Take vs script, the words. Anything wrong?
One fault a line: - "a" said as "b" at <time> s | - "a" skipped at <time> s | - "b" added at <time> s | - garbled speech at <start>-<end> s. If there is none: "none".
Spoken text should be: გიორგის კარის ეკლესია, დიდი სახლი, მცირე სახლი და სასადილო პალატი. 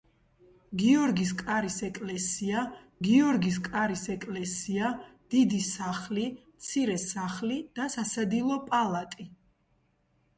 - "გიორგის კარის ეკლესია" added at 3.1 s